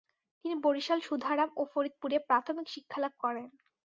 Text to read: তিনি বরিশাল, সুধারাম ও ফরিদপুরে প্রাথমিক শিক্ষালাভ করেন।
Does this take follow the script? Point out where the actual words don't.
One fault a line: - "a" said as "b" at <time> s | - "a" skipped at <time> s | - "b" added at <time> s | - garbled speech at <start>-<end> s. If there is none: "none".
none